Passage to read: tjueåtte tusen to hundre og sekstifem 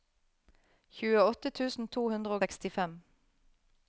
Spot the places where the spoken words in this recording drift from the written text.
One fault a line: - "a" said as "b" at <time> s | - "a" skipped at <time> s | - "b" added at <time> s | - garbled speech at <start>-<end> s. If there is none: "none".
- "og" skipped at 2.4 s